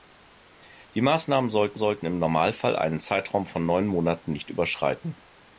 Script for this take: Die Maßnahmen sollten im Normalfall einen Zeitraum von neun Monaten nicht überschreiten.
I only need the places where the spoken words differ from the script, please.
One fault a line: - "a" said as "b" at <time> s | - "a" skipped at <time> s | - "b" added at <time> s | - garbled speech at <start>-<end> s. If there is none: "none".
- "sollten" added at 1.8 s